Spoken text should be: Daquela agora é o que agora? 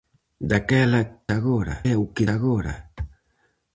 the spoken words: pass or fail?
pass